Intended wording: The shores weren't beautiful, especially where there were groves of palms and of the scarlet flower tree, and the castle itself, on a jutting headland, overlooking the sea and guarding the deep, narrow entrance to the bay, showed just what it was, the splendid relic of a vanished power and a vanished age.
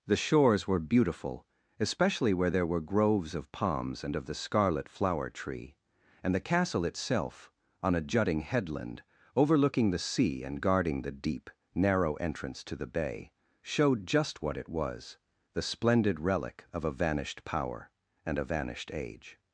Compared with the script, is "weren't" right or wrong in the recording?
wrong